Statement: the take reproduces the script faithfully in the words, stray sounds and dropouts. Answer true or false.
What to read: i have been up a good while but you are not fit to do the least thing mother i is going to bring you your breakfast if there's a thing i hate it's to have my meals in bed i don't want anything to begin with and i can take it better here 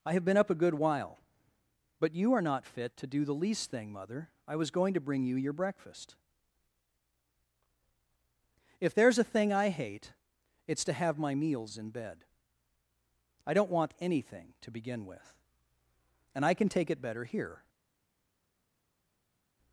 false